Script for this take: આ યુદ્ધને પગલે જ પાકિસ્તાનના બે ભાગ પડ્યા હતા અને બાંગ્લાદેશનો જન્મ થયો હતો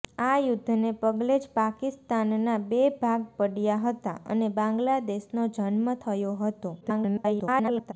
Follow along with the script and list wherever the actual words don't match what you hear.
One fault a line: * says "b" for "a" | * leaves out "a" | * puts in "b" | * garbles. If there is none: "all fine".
* garbles